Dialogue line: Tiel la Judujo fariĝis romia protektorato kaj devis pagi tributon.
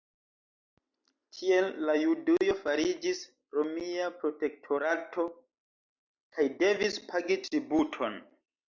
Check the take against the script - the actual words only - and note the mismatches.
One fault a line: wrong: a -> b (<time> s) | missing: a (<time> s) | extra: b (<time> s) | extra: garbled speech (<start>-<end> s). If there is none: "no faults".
no faults